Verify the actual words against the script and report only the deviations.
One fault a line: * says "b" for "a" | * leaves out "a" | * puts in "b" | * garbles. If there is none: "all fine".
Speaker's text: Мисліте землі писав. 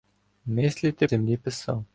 all fine